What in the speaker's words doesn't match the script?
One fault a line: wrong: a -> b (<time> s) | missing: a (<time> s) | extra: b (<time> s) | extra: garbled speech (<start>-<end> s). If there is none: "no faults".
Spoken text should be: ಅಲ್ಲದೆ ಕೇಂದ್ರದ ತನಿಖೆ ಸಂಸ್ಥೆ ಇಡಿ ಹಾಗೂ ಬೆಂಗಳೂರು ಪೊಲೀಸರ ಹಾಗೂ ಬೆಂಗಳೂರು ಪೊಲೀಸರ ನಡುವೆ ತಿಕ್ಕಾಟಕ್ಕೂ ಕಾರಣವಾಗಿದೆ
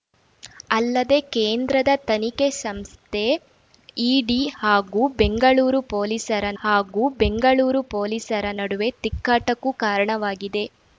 no faults